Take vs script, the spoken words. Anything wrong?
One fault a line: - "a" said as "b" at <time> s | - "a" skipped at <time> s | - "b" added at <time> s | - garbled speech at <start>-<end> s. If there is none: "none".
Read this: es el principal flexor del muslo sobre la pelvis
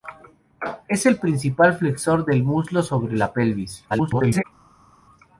- garbled speech at 3.9-4.4 s